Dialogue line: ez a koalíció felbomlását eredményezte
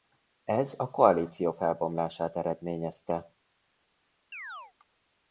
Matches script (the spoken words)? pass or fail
pass